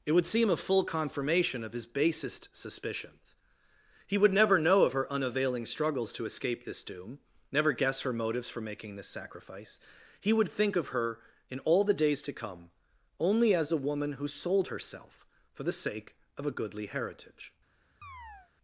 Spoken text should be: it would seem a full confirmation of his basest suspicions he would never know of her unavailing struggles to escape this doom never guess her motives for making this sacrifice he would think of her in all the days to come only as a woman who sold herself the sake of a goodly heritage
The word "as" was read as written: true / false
true